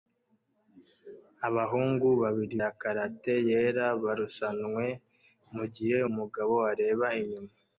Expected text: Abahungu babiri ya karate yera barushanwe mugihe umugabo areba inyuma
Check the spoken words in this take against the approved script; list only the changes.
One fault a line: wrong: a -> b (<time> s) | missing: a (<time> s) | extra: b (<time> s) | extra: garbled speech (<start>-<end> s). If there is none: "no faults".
no faults